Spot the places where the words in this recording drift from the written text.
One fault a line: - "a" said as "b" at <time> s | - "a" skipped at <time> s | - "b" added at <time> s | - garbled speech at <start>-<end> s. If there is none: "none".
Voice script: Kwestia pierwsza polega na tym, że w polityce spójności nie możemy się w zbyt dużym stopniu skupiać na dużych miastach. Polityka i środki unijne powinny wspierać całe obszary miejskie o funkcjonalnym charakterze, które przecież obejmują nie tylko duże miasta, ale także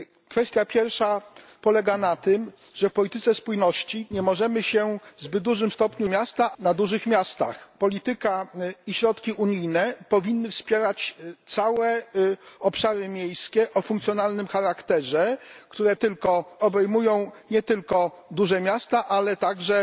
- "skupiać" said as "miasta" at 6.1 s
- "przecież" said as "tylko" at 15.9 s